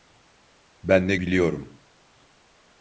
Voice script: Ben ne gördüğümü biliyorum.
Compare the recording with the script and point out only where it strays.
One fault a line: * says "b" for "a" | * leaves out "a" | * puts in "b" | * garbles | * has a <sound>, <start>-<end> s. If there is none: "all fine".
* leaves out "gördüğümü"